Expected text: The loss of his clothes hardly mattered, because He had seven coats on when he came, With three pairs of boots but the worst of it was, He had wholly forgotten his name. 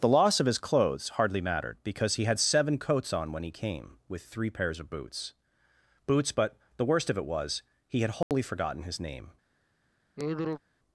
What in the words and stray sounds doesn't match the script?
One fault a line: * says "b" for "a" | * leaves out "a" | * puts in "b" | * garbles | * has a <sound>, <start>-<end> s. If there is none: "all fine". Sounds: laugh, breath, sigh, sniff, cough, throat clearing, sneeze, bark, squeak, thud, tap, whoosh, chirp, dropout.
* puts in "boots"
* has a dropout, 8.2-8.3 s
* has a sigh, 10.2-10.6 s